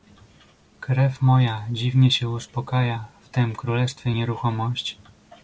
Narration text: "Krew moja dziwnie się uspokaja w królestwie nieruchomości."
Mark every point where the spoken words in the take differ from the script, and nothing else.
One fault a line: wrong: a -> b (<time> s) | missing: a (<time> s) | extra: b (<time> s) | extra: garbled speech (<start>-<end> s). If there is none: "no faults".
extra: tem (3.3 s)